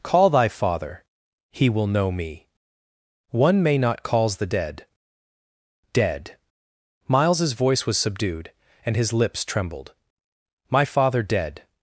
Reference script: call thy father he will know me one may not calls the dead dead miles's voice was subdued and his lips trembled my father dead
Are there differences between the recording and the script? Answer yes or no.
no